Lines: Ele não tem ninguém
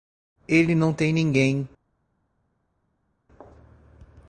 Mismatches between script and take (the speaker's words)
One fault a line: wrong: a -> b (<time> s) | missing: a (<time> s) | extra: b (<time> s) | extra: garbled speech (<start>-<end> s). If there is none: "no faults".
no faults